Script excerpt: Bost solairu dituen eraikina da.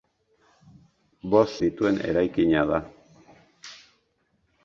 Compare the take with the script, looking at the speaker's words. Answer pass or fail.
fail